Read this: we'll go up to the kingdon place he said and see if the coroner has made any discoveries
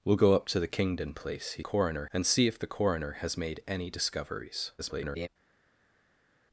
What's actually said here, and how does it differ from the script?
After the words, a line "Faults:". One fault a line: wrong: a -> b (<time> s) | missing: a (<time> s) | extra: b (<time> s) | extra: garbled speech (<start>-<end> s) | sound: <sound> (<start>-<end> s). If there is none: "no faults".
we'll go up to the kingdon place he coroner and see if the coroner has made any discoveries [garbled]
Faults:
wrong: said -> coroner (1.6 s)
extra: garbled speech (4.8-5.3 s)